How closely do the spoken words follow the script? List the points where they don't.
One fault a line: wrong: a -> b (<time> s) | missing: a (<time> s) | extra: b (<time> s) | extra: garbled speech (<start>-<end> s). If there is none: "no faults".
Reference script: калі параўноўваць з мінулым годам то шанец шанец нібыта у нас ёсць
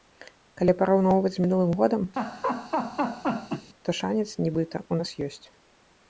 missing: шанец (4.3 s)